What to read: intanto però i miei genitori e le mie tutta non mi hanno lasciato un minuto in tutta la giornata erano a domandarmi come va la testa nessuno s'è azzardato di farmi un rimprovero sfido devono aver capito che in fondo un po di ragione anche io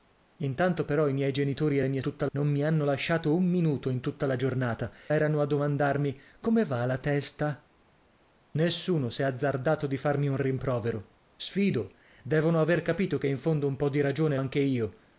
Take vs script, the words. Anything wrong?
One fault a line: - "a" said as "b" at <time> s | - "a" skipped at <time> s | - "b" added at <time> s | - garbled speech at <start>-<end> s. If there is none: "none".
none